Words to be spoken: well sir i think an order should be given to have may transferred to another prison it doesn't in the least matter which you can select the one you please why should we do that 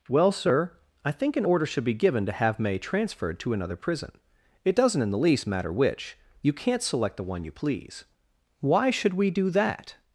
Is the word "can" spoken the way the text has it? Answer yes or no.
no